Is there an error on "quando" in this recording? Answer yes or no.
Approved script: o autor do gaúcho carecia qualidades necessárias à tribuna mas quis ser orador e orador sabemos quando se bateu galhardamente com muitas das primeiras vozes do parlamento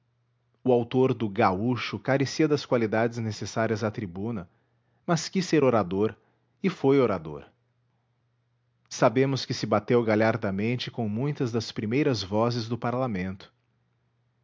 yes